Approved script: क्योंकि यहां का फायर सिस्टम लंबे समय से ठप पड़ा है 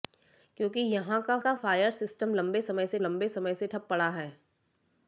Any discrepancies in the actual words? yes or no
yes